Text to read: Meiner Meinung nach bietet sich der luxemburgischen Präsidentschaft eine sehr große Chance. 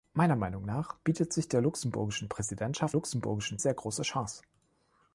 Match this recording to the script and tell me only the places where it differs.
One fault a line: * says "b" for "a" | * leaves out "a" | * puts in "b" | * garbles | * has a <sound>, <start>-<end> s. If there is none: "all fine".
* says "luxemburgischen" for "eine"